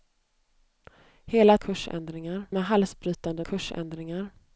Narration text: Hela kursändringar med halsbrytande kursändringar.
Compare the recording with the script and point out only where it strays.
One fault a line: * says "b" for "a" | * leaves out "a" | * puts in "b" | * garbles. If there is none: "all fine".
all fine